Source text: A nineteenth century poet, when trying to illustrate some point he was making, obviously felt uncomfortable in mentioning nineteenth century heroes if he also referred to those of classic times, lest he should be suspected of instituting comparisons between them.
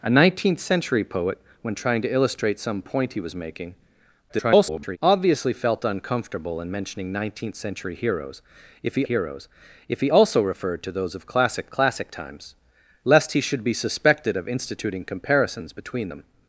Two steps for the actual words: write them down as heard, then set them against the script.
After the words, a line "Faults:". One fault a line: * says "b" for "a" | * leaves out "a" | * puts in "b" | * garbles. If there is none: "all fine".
A nineteenth century poet, when trying to illustrate some point he was making, [garbled] obviously felt uncomfortable in mentioning nineteenth century heroes if he heroes if he also referred to those of classic classic times, lest he should be suspected of instituting comparisons between them.
Faults:
* garbles
* puts in "heroes if he"
* puts in "classic"